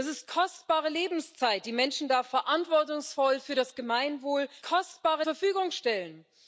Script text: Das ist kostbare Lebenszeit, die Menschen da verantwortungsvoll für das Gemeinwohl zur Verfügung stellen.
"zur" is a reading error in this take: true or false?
true